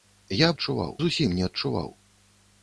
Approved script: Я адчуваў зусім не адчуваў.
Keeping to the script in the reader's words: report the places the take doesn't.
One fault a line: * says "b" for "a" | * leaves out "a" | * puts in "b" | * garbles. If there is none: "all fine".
all fine